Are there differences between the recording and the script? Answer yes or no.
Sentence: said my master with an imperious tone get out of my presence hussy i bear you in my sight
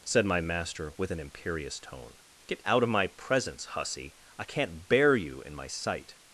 yes